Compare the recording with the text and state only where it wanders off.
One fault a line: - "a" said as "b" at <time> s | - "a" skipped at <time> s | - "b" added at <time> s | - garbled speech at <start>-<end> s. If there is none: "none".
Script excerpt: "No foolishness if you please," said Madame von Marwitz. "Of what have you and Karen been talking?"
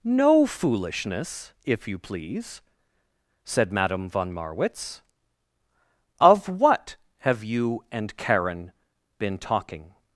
none